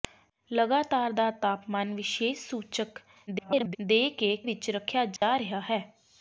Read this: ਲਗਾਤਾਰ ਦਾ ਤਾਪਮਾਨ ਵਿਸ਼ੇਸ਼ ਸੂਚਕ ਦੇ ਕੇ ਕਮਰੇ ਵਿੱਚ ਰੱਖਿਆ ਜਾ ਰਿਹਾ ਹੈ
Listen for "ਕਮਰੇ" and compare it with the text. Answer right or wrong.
wrong